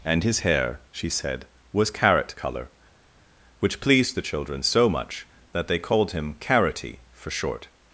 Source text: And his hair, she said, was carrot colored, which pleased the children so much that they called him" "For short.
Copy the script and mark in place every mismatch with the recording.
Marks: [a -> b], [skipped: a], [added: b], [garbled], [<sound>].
And his hair, she said, was carrot [colored, -> color] which pleased the children so much that they called him" [added: Carroty] "For short.